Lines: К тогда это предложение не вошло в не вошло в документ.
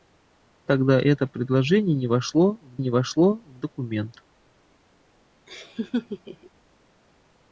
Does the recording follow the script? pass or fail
pass